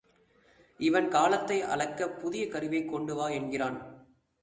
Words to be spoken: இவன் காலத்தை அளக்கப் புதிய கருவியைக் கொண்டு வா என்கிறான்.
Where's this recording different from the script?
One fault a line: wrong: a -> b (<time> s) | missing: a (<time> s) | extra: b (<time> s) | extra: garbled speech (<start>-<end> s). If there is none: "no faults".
no faults